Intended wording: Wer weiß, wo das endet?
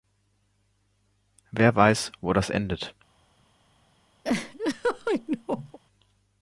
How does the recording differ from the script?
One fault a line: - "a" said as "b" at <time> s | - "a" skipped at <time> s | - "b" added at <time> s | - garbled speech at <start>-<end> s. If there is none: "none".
none